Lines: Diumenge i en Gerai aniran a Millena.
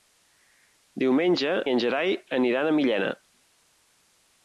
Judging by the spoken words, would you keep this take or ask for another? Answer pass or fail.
pass